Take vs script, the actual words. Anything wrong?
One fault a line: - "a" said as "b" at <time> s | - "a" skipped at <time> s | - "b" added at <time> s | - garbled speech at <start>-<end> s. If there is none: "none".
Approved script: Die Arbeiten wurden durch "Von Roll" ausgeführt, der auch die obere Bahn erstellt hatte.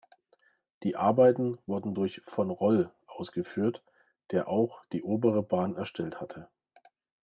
none